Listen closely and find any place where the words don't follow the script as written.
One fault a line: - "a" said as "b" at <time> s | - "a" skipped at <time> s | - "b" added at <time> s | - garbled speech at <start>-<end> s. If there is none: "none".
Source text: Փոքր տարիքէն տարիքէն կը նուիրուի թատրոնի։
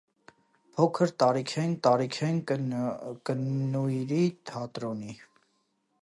none